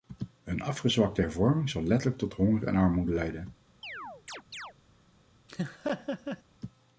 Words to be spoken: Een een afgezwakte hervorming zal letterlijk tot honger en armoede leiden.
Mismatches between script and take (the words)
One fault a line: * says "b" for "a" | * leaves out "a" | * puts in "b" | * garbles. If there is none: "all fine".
* leaves out "een"